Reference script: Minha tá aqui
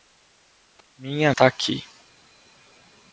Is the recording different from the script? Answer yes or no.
no